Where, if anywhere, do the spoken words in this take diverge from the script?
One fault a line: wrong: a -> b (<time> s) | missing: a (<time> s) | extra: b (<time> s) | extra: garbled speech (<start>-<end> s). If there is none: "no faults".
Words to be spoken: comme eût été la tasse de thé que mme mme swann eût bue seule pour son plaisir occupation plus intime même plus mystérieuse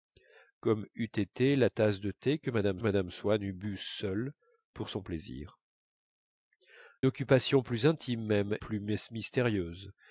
no faults